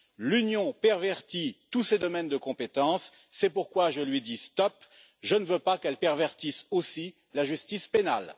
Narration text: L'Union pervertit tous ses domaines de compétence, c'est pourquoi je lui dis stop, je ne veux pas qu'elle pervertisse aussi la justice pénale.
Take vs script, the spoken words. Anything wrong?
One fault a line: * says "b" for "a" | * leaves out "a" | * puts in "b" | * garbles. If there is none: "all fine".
all fine